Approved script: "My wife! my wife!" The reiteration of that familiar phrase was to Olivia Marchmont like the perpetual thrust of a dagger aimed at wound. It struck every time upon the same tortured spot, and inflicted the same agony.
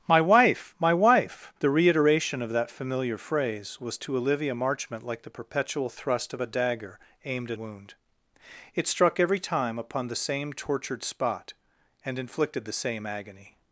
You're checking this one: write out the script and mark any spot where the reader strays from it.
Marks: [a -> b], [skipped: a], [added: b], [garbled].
"My wife! my wife!" The reiteration of that familiar phrase was to Olivia Marchmont like the perpetual thrust of a dagger aimed at wound. It struck every time upon the same tortured spot, and inflicted the same agony.